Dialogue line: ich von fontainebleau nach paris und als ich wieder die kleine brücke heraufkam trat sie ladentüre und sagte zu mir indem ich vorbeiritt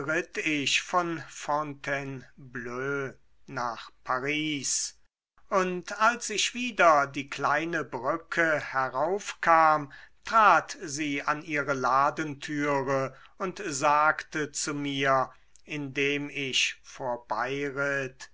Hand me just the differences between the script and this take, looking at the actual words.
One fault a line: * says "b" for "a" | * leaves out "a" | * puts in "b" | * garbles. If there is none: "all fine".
* puts in "an ihre"